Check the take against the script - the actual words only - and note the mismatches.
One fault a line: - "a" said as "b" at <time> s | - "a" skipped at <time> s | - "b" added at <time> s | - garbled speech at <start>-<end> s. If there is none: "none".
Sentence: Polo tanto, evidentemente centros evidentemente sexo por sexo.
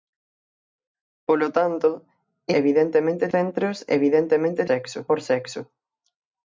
none